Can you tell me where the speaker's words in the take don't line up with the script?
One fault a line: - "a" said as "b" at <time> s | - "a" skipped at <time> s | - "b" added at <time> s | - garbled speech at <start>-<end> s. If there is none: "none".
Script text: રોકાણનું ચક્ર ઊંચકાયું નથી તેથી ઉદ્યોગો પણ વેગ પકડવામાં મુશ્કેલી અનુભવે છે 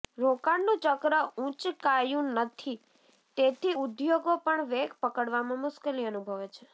none